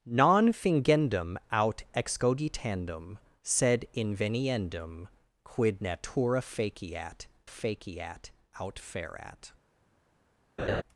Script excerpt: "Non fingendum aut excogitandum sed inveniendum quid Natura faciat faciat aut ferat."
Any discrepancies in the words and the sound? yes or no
yes